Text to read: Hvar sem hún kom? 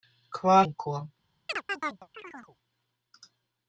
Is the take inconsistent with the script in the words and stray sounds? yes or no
yes